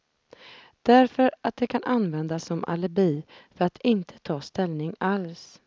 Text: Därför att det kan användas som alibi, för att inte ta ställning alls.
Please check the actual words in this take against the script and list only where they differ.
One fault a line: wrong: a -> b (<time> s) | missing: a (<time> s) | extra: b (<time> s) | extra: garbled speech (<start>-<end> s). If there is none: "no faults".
no faults